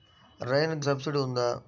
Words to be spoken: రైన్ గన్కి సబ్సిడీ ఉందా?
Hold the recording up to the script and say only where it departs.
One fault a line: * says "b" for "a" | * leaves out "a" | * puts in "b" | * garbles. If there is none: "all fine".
* leaves out "గన్కి"